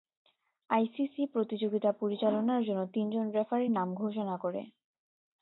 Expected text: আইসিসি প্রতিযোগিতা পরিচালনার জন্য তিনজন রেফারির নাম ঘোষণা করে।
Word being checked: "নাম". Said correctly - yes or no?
yes